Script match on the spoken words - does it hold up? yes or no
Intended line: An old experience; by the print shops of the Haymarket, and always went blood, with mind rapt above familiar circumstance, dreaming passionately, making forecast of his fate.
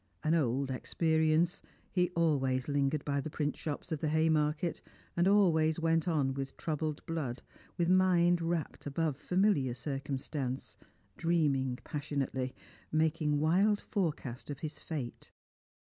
no